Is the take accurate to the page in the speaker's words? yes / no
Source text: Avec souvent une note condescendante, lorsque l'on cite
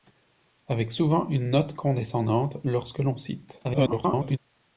no